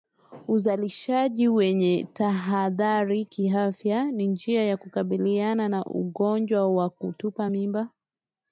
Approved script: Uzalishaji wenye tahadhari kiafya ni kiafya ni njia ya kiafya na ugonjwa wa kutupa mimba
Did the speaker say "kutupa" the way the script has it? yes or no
yes